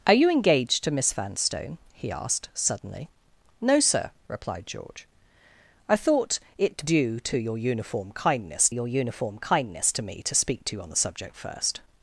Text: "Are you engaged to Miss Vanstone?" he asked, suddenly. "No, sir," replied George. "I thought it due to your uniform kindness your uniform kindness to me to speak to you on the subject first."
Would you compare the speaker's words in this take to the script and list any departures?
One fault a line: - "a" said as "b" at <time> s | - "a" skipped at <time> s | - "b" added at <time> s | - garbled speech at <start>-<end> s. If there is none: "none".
none